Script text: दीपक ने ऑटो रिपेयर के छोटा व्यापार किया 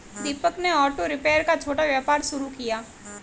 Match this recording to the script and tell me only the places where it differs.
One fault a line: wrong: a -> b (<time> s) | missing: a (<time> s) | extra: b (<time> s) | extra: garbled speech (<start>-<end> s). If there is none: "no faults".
wrong: के -> का (1.4 s)
extra: शुरू (2.2 s)